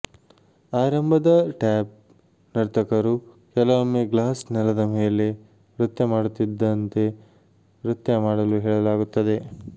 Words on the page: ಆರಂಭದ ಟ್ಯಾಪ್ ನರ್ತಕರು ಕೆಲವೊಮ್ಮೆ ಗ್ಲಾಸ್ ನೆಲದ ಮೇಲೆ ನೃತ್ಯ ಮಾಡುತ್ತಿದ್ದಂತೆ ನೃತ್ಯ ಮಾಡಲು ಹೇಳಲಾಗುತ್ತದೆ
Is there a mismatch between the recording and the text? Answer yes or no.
no